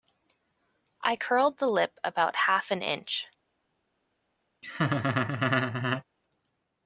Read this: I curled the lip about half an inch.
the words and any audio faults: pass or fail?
fail